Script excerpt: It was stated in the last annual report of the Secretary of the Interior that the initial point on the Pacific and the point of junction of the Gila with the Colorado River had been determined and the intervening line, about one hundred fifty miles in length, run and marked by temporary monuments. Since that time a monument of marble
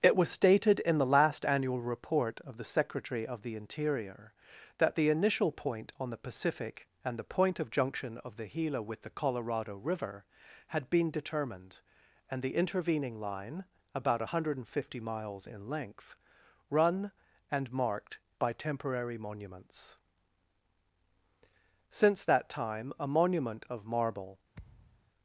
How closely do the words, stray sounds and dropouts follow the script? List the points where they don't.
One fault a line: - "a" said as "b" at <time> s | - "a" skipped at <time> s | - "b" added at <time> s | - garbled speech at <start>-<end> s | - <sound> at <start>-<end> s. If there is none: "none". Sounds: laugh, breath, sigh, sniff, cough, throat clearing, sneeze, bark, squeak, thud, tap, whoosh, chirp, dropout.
- thud at 24.5-25.1 s